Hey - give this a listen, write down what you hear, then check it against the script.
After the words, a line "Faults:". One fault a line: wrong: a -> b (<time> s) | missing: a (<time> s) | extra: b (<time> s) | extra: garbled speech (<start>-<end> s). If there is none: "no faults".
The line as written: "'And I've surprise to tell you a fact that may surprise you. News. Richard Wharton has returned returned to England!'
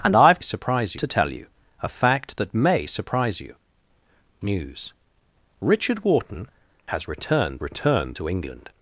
"'And I've surprise to tell you a fact that may surprise you. News. Richard Wharton has returned returned to England!'
Faults:
no faults